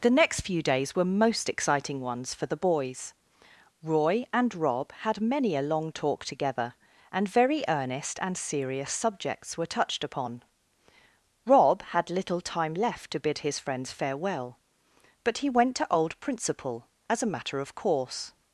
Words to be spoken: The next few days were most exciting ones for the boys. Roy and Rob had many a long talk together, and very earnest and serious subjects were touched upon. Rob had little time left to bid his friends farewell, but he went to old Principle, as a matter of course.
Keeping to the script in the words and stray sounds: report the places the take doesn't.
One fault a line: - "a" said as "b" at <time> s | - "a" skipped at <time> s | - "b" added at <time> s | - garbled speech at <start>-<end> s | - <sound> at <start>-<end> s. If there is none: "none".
none